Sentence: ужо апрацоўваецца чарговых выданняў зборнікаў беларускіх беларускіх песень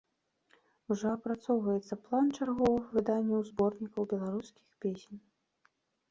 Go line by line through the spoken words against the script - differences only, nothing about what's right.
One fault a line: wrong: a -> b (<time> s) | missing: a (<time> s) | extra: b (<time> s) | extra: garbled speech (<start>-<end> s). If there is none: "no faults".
extra: план (2.1 s)
missing: беларускіх (4.7 s)